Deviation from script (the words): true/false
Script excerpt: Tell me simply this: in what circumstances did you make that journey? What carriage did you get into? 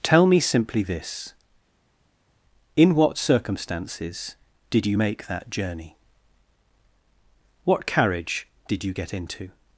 false